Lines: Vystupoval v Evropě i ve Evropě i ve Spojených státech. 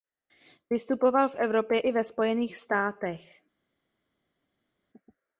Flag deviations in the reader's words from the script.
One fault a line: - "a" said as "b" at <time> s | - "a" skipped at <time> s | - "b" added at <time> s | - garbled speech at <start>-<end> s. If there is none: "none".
- "Evropě i ve" skipped at 2.0 s